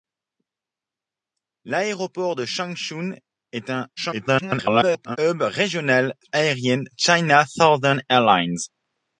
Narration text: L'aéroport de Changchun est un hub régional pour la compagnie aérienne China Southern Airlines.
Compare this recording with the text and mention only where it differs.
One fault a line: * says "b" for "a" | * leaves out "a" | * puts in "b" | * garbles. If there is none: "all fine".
* garbles
* leaves out "pour la compagnie"